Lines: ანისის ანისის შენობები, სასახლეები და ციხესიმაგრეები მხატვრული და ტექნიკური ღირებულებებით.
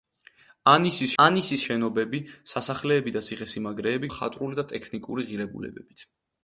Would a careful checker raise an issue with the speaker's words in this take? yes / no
no